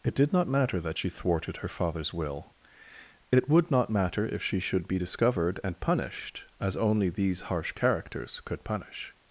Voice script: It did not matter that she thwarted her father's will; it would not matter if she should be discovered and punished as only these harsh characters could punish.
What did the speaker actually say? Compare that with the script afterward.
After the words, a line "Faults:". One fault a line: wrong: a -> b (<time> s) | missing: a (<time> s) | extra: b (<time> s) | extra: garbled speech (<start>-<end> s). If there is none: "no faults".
It did not matter that she thwarted her father's will; it would not matter if she should be discovered and punished as only these harsh characters could punish.
Faults:
no faults